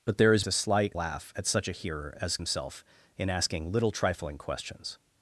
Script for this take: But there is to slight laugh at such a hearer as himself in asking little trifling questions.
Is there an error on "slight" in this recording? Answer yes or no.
no